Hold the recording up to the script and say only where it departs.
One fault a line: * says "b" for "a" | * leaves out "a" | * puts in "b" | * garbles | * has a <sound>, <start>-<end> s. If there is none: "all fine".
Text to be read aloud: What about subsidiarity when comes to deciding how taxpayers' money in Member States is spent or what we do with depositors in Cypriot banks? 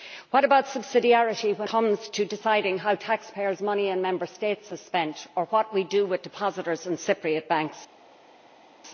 all fine